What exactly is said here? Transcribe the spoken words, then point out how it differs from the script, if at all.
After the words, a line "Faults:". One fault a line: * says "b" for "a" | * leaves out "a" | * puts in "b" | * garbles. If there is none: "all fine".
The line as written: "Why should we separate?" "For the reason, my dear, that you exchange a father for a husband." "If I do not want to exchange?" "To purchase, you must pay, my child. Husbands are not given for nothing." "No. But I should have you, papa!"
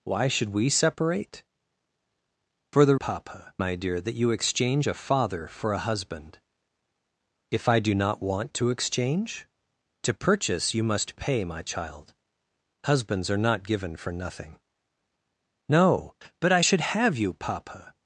"Why should we separate?" "For the papa, my dear, that you exchange a father for a husband." "If I do not want to exchange?" "To purchase, you must pay, my child. Husbands are not given for nothing." "No. But I should have you, papa!"
Faults:
* says "papa" for "reason"